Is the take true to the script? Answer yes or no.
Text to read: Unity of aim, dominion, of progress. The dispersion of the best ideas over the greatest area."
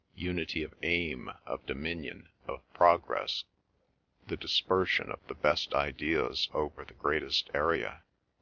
no